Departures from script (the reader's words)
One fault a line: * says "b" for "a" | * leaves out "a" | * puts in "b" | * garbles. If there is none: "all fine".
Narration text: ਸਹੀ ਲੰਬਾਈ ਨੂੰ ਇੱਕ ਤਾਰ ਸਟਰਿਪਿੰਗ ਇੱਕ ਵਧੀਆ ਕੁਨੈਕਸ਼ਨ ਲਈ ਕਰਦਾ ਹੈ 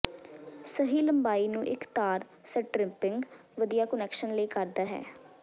* leaves out "ਇੱਕ"